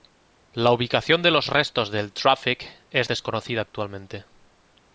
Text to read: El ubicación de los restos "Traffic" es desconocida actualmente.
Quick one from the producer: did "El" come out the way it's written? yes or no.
no